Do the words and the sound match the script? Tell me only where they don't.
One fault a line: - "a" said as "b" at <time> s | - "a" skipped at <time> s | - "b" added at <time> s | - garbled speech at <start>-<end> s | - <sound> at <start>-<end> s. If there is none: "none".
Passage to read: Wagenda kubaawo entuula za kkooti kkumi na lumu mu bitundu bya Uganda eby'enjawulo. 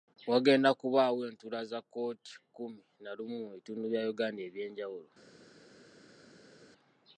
none